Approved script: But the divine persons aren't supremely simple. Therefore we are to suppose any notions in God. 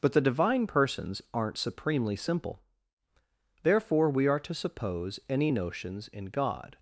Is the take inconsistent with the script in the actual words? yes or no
no